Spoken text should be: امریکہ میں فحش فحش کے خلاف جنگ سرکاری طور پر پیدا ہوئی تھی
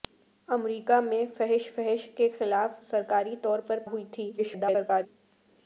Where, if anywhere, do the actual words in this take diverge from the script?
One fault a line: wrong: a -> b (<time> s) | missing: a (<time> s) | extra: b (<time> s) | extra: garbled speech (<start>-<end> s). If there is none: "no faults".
missing: جنگ (2.8 s)
missing: پیدا (3.8 s)
extra: garbled speech (4.4-5.1 s)